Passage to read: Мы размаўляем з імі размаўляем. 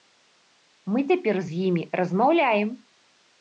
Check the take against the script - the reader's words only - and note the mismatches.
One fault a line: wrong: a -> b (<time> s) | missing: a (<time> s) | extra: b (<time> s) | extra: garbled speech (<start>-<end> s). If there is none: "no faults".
wrong: размаўляем -> цяпер (1.1 s)